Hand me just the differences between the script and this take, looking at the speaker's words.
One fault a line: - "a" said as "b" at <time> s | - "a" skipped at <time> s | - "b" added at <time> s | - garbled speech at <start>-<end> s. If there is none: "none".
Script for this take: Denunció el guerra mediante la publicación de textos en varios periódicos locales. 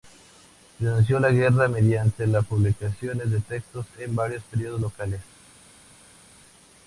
- "el" said as "la" at 1.2 s